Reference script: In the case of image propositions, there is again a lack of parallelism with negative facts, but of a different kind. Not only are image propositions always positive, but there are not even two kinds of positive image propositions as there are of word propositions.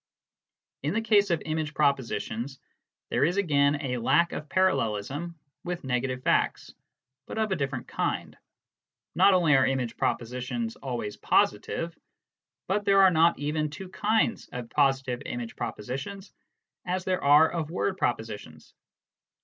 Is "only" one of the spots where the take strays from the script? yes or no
no